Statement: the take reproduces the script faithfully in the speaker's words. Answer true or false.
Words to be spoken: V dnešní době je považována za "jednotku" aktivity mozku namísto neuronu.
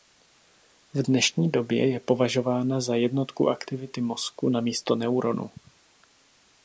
true